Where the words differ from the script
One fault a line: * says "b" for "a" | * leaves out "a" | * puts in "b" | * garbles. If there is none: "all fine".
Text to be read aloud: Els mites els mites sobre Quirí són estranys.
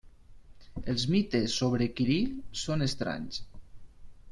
* leaves out "els mites"